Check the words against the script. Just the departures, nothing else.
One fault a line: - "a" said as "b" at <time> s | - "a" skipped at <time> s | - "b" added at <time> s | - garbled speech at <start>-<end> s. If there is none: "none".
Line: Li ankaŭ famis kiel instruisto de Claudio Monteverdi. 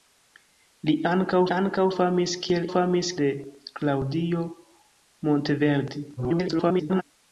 - "ankaŭ" added at 1.5 s
- "instruisto" said as "famis" at 2.7 s
- garbled speech at 6.2-7.0 s